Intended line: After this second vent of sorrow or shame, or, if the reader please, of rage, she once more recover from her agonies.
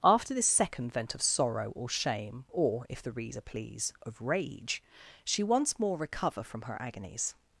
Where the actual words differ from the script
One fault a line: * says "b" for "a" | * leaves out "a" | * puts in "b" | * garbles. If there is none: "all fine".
all fine